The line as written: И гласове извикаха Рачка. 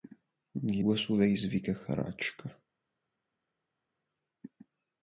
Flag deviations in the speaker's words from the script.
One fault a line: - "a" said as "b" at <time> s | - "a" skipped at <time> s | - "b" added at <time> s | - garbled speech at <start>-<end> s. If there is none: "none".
none